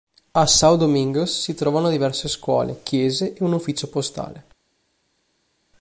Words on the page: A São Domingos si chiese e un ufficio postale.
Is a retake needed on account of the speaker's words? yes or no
yes